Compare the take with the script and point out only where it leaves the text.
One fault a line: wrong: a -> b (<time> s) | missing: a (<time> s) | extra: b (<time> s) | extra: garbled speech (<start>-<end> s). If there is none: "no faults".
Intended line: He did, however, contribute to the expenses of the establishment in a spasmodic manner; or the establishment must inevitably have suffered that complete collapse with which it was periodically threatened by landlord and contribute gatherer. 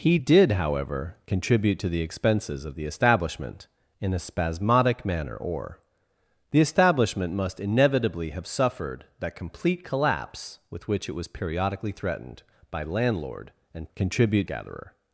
no faults